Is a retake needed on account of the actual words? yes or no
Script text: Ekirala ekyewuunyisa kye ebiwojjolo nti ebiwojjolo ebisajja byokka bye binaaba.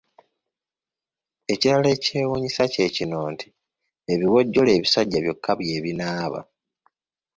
yes